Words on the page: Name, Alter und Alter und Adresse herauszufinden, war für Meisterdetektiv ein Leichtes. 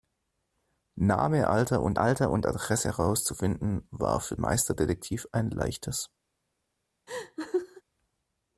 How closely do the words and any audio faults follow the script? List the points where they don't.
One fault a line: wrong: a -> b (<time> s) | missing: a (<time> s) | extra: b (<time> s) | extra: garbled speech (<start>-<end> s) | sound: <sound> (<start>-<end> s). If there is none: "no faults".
sound: laugh (7.1-7.8 s)